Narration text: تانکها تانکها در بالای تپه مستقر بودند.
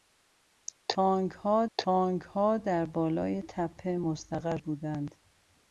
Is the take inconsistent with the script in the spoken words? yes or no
no